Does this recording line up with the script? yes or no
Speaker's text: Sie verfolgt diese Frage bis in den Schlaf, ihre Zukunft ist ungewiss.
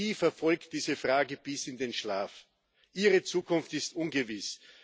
yes